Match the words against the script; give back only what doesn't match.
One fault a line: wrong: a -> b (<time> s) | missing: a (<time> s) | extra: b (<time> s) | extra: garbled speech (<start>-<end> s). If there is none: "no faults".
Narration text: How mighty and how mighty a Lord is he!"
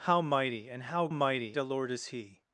no faults